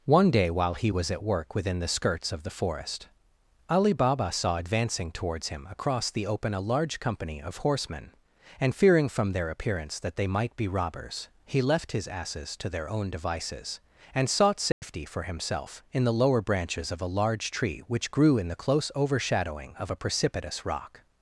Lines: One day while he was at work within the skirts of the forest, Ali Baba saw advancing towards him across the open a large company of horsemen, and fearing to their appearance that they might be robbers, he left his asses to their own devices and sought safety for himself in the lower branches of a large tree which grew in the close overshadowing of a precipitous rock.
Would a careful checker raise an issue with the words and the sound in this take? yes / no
yes